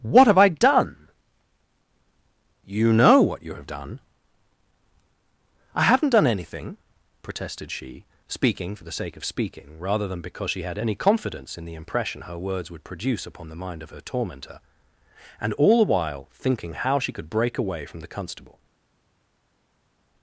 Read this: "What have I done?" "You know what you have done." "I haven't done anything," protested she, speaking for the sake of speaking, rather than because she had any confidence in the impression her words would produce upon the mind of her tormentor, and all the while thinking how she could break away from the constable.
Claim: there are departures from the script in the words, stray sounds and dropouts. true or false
false